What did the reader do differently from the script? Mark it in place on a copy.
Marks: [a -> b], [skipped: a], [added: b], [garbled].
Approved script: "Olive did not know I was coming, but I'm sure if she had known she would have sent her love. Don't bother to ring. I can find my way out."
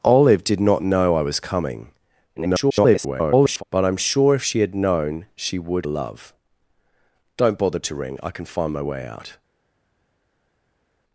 "Olive did not know I was coming, [garbled] but I'm sure if she had known she would [skipped: have sent her] love. Don't bother to ring. I can find my way out."